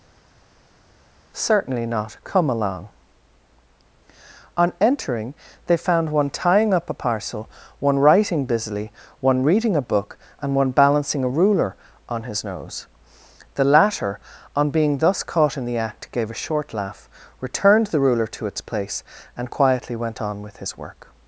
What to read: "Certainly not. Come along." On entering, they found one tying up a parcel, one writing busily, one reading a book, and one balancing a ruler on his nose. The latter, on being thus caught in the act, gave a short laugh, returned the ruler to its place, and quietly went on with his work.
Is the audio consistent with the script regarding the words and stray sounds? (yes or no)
yes